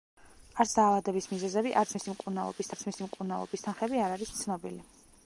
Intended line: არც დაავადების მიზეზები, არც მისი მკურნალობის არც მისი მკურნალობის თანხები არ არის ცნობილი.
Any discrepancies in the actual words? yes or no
no